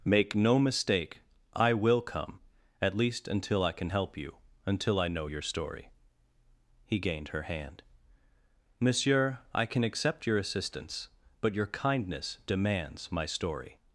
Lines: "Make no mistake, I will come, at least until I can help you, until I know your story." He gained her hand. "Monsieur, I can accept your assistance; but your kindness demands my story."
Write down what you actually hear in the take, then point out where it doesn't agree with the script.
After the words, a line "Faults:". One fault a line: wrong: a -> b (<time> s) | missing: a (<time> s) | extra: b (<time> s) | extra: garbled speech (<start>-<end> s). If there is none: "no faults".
"Make no mistake, I will come, at least until I can help you, until I know your story." He gained her hand. "Monsieur, I can accept your assistance; but your kindness demands my story."
Faults:
no faults